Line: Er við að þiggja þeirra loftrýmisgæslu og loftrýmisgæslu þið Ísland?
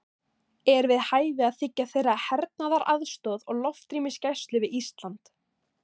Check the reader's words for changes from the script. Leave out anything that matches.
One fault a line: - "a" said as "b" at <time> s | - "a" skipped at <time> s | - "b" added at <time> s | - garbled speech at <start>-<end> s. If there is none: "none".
- "hæfi" added at 1.1 s
- "loftrýmisgæslu" said as "hernaðaraðstoð" at 2.3 s
- "þið" said as "við" at 4.7 s